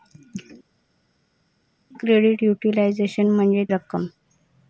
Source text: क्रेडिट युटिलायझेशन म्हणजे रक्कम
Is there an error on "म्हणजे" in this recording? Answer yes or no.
no